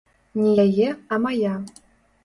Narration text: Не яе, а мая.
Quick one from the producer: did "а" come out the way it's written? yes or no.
yes